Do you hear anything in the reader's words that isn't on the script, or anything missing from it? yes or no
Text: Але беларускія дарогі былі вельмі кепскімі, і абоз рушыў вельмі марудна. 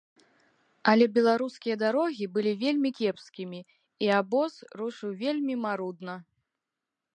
no